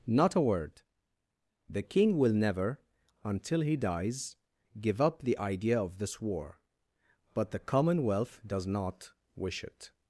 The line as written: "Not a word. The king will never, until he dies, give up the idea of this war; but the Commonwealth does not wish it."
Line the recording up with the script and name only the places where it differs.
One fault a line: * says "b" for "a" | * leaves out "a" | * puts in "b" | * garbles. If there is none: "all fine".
all fine